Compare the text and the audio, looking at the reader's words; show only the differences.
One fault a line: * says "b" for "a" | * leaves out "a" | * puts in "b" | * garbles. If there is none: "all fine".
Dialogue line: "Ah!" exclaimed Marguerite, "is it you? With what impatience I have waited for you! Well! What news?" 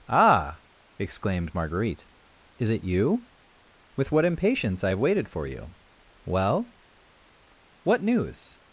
all fine